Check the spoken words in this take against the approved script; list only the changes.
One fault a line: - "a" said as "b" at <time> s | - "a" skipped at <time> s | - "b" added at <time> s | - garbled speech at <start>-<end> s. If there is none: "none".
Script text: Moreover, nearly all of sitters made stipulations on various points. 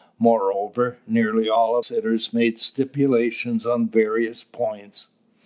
none